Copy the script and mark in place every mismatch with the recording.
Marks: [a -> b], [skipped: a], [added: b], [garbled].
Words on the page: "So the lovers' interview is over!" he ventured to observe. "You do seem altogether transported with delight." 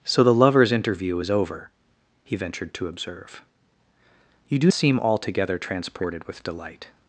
"So the lovers' interview is over!" he ventured to observe. "You do seem altogether transported with delight."